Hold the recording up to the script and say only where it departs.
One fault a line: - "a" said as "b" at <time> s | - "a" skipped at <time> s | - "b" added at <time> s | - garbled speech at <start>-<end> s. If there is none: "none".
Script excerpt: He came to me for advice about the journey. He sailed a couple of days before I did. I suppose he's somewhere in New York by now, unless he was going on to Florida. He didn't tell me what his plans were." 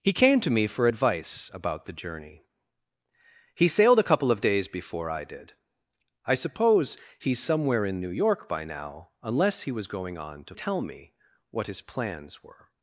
- "Florida He didn't" skipped at 10.5 s